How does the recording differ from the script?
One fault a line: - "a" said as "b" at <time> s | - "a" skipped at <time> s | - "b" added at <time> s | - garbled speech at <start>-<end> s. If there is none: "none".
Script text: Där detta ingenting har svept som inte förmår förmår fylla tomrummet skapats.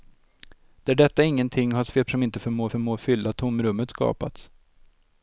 none